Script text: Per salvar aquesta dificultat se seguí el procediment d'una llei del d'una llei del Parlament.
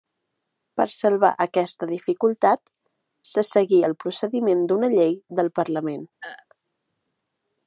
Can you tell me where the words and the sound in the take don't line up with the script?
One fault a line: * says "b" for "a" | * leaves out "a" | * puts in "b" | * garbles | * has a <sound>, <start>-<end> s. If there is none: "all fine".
* leaves out "d'una llei del"
* has a throat clearing, 6.2-6.5 s